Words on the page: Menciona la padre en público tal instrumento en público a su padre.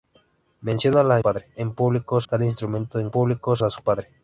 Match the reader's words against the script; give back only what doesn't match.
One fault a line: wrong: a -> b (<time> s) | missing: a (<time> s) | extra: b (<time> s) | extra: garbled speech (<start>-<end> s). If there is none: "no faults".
no faults